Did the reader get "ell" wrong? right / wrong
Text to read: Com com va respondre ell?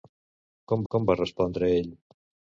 right